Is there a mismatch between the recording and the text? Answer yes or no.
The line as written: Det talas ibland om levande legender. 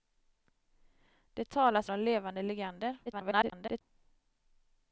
yes